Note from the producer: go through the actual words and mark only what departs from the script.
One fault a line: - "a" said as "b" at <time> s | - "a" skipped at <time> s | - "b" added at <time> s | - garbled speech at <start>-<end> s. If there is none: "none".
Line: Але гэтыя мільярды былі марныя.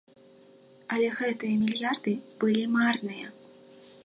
none